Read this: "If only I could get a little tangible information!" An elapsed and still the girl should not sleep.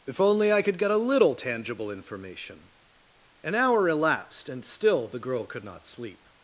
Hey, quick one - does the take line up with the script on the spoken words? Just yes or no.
no